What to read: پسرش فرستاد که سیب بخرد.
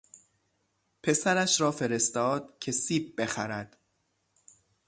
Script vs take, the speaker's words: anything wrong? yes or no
yes